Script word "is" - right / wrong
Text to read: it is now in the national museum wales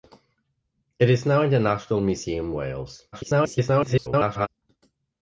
right